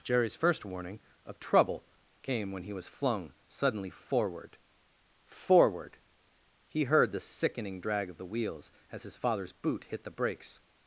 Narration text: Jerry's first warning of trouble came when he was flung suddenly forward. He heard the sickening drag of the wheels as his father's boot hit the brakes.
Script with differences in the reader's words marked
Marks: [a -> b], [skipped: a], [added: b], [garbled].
Jerry's first warning of trouble came when he was flung suddenly forward. [added: forward] He heard the sickening drag of the wheels as his father's boot hit the brakes.